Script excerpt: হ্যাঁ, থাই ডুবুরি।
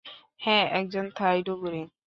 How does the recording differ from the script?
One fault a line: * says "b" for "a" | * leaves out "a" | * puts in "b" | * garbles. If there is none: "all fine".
* puts in "একজন"